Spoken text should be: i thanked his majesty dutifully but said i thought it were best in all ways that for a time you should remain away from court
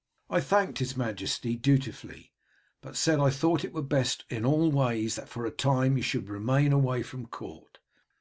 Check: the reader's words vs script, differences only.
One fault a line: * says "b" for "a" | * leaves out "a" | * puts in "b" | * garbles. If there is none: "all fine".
all fine